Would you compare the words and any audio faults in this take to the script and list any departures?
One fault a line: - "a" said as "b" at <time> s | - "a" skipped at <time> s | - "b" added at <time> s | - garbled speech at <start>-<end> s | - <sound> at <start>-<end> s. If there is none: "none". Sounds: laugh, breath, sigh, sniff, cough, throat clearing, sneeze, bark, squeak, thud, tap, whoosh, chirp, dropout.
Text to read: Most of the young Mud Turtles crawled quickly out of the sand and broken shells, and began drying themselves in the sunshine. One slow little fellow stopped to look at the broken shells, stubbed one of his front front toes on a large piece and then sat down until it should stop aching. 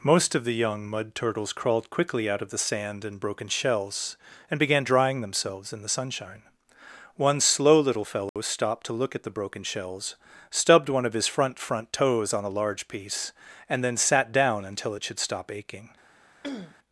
- dropout at 8.3-8.4 s
- throat clearing at 16.4-16.8 s